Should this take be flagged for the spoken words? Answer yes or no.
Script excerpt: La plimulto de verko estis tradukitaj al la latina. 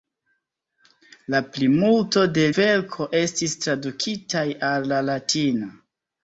no